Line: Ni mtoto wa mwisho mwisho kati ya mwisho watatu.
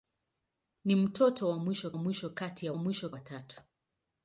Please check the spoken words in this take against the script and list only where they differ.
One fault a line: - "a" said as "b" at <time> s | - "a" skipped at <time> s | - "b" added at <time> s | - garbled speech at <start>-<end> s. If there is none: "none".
none